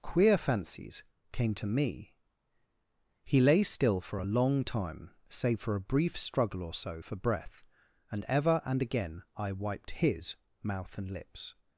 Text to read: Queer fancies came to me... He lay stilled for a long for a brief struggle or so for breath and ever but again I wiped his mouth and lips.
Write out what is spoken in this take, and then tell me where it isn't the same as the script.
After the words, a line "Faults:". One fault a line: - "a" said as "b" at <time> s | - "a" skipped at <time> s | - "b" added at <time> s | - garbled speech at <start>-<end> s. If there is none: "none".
Queer fancies came to me... He lay still for a long time, save for a brief struggle or so for breath and ever and again I wiped his mouth and lips.
Faults:
- "stilled" said as "still" at 3.6 s
- "time save" added at 4.6 s
- "but" said as "and" at 8.7 s